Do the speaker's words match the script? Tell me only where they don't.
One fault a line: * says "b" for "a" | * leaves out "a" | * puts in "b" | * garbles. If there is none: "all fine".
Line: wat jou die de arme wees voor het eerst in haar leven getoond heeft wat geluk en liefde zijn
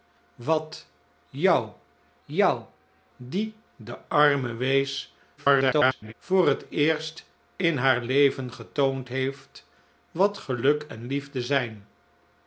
* puts in "jou"
* garbles